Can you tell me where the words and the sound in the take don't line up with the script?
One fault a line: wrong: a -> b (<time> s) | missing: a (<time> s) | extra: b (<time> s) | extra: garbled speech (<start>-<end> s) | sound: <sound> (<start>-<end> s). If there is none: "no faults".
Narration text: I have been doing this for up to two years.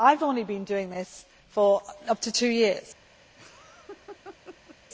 extra: only (0.2 s)
sound: laugh (3.4-4.8 s)